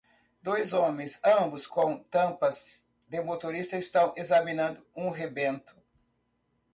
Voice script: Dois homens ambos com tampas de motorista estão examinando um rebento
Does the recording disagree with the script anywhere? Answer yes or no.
no